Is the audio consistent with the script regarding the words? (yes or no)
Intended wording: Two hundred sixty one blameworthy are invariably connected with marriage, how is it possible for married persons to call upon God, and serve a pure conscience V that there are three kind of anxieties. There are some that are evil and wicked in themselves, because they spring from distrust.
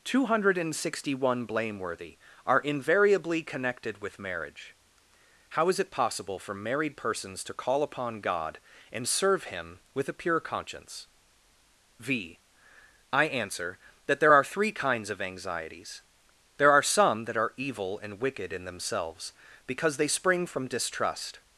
no